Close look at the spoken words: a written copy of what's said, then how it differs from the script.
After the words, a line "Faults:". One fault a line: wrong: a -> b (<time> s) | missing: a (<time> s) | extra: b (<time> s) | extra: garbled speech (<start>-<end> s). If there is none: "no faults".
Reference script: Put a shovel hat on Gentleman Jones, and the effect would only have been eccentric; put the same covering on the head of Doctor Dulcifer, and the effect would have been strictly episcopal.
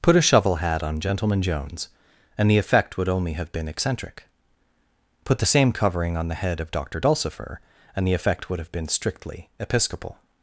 Put a shovel hat on Gentleman Jones, and the effect would only have been eccentric; put the same covering on the head of Doctor Dulcifer, and the effect would have been strictly episcopal.
Faults:
no faults